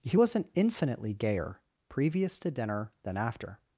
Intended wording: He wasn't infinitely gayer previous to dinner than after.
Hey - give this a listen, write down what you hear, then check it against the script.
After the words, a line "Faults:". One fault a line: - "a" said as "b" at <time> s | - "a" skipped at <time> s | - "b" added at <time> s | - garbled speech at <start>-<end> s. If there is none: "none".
He wasn't infinitely gayer previous to dinner than after.
Faults:
none